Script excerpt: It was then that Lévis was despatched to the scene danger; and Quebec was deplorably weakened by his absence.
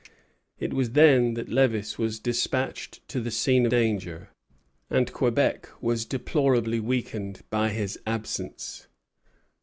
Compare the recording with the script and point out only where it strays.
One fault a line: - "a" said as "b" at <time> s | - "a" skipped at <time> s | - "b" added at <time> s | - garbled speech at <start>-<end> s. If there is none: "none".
none